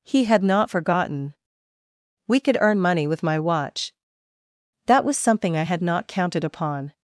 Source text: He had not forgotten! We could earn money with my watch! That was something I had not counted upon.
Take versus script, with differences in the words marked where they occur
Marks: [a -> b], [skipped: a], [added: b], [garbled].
He had not forgotten! We could earn money with my watch! That was something I had not counted upon.